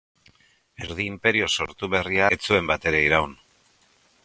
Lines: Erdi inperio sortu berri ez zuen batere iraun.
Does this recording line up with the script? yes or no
yes